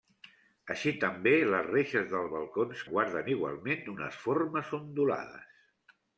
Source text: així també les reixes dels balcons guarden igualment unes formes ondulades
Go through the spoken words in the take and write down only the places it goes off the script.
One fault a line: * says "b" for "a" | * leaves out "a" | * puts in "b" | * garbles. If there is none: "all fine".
all fine